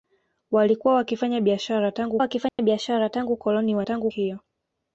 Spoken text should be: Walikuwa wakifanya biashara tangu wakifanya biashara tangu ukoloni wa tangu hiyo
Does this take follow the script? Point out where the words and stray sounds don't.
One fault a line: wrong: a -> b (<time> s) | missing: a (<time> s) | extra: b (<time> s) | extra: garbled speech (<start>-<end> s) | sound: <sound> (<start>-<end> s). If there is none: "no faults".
sound: dropout (2.5-2.6 s)